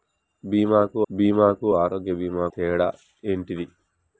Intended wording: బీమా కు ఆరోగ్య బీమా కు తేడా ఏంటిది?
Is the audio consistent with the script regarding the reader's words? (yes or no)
no